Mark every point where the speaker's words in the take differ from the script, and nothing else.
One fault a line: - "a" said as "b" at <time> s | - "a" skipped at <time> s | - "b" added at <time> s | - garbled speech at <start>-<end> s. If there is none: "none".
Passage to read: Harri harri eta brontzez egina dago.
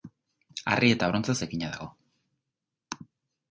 - "harri" skipped at 0.9 s